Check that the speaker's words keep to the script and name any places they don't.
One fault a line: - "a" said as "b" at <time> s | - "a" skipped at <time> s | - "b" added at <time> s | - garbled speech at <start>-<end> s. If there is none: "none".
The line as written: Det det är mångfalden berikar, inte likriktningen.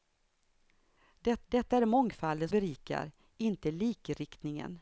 none